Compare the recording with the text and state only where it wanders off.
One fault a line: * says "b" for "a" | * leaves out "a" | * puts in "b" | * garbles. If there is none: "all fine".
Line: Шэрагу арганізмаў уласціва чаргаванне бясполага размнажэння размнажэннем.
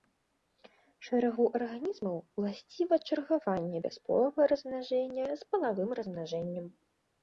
* puts in "з палавым"